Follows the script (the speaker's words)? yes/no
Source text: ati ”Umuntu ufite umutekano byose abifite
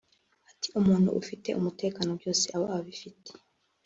no